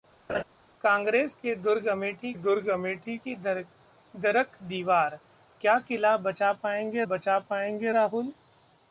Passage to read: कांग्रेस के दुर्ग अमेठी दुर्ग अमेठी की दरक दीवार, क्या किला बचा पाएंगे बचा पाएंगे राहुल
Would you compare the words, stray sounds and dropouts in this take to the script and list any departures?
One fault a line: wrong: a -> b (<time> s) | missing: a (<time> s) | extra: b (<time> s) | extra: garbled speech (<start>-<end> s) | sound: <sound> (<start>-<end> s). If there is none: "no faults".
sound: laugh (0.3-0.4 s)